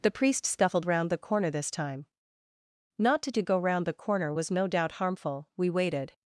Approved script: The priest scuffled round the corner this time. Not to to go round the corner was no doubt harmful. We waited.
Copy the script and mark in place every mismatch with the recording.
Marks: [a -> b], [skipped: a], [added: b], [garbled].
The priest scuffled round the corner this time. Not to to go round the corner was no doubt harmful. We waited.